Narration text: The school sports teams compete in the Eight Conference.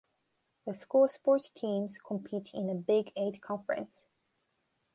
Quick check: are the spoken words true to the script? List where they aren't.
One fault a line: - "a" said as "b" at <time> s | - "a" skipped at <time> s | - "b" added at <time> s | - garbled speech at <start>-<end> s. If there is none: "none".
- "Big" added at 2.7 s